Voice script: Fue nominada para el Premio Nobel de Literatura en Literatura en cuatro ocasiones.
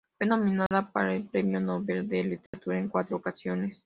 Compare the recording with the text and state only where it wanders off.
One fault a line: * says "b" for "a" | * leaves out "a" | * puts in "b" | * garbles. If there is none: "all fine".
* leaves out "Literatura en"